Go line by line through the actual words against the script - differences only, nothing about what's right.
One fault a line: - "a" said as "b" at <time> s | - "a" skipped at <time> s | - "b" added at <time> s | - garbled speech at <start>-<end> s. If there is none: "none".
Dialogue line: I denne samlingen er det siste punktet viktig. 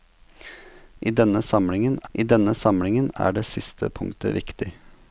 - "I denne samlingen" added at 2.1 s